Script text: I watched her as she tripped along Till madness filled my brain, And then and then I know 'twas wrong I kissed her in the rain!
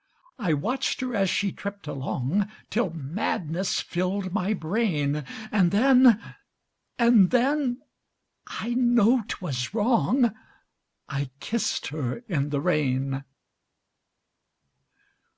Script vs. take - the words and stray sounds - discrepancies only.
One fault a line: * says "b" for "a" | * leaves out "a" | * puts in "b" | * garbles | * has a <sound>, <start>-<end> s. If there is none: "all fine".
all fine